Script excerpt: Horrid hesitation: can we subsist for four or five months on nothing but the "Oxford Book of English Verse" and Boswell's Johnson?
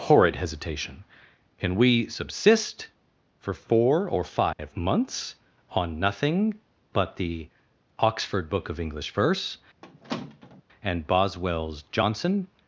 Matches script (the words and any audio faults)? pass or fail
fail